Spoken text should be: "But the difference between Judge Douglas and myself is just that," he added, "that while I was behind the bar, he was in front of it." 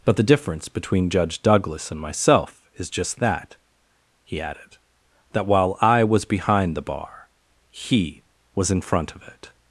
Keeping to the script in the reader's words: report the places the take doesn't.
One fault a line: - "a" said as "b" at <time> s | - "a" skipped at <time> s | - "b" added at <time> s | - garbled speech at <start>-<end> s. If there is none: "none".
none